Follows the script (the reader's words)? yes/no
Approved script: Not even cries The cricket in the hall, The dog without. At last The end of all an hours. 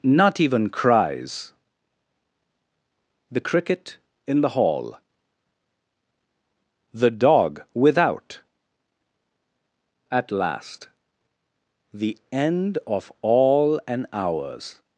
yes